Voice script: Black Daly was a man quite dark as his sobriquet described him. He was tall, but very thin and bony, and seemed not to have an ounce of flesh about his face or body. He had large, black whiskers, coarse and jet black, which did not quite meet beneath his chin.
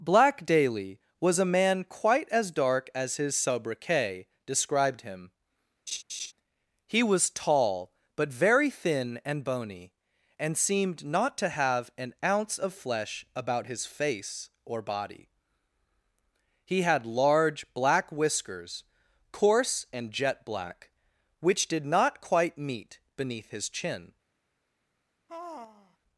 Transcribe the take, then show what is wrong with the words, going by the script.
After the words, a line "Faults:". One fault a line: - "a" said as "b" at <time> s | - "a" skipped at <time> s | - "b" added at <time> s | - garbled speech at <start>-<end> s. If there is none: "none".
Black Daly was a man quite as dark as his sobriquet described him. He was tall, but very thin and bony, and seemed not to have an ounce of flesh about his face or body. He had large, black whiskers, coarse and jet black, which did not quite meet beneath his chin.
Faults:
- "as" added at 2.3 s